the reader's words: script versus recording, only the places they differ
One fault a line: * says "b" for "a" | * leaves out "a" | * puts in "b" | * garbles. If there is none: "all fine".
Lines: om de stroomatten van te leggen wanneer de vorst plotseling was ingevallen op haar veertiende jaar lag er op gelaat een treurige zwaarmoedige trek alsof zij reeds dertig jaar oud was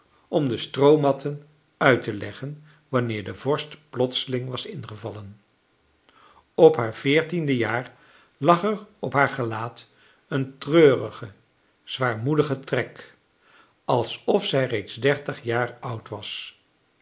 * says "uit" for "van"
* puts in "haar"